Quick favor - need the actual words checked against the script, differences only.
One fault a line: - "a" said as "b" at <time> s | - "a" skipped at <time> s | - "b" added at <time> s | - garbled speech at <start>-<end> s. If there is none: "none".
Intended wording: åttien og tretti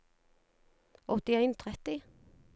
none